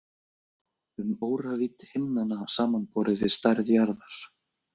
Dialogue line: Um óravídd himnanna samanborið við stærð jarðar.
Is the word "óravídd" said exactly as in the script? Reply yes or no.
yes